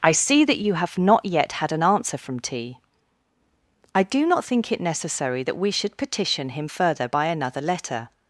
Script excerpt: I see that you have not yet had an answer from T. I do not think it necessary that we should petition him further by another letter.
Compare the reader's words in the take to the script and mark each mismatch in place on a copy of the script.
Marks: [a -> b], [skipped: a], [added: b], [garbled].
I see that you have not yet had an answer from T. I do not think it necessary that we should petition him further by another letter.